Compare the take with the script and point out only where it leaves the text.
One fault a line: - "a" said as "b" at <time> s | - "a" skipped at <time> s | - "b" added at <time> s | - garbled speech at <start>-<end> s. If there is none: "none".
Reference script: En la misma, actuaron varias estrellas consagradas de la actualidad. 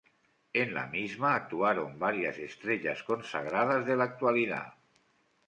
none